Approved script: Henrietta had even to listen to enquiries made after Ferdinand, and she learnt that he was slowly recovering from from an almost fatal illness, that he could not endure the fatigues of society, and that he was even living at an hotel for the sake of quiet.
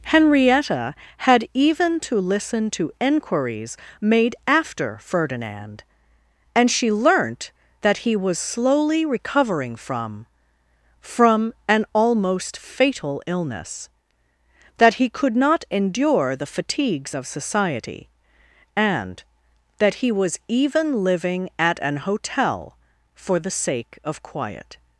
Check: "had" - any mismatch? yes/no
no